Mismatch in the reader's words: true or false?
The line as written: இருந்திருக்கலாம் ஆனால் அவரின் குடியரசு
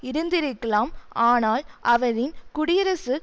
false